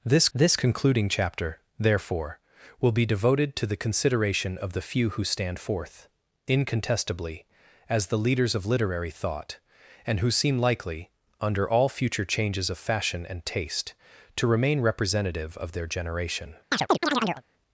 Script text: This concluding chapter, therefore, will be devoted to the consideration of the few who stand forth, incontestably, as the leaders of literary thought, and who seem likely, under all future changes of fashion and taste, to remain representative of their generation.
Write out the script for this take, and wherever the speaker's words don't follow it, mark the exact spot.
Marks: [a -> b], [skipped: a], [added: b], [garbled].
This [added: this] concluding chapter, therefore, will be devoted to the consideration of the few who stand forth, incontestably, as the leaders of literary thought, and who seem likely, under all future changes of fashion and taste, to remain representative of their generation.